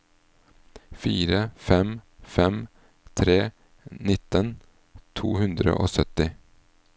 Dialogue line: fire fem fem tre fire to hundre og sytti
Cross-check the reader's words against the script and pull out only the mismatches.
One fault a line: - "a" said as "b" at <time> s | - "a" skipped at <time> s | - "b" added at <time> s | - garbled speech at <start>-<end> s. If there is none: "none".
- "fire" said as "nitten" at 4.1 s